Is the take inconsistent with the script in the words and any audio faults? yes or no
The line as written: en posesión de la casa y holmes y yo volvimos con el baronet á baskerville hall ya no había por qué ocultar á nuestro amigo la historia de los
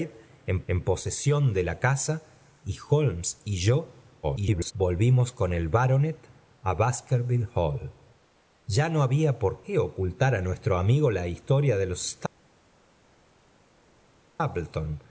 yes